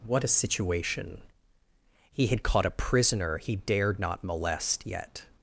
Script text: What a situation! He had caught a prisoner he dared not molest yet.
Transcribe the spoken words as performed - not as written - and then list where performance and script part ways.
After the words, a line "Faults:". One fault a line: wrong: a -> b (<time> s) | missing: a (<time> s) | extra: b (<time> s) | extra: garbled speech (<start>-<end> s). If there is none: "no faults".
What a situation! He had caught a prisoner he dared not molest yet.
Faults:
no faults